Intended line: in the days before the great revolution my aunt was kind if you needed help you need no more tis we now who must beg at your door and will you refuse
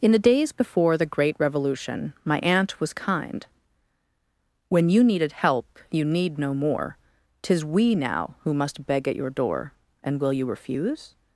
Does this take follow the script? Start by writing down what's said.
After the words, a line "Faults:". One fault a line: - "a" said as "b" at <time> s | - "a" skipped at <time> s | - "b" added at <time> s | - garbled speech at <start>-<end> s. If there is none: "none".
in the days before the great revolution my aunt was kind when you needed help you need no more tis we now who must beg at your door and will you refuse
Faults:
- "if" said as "when" at 4.7 s